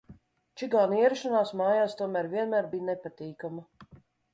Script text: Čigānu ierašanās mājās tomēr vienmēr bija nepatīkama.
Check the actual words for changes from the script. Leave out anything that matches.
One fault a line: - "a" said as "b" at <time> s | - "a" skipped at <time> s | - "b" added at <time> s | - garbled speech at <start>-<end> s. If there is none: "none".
none